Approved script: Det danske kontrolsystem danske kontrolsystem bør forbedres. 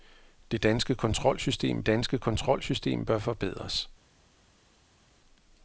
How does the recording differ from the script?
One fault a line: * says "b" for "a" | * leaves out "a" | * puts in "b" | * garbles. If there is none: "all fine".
all fine